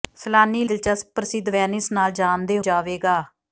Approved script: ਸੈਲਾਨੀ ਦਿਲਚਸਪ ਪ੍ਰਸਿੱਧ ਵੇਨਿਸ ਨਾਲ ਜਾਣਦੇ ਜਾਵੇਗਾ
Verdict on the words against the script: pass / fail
pass